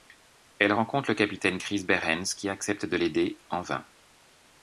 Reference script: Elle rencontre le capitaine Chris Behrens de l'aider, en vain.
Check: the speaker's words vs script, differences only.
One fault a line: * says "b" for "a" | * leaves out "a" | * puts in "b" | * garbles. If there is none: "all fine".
* puts in "qui accepte"